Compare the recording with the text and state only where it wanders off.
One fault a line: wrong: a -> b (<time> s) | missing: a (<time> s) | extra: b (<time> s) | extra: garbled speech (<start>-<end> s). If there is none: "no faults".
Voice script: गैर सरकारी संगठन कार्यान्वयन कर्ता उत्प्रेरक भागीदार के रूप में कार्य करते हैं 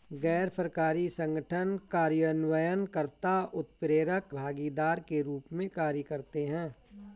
no faults